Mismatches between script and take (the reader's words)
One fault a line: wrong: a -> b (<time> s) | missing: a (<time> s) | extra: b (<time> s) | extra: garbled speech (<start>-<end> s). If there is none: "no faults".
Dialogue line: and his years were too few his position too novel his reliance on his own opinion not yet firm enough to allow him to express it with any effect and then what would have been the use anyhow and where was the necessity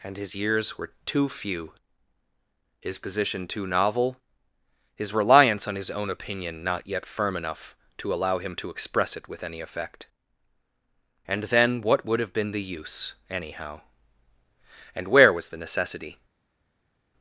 no faults